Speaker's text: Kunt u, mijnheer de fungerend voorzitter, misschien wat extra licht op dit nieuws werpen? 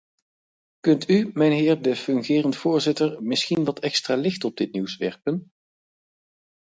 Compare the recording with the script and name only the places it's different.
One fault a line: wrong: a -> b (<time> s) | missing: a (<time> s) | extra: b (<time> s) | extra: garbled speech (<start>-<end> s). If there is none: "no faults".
no faults